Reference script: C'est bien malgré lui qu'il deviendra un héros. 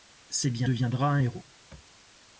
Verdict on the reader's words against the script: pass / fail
fail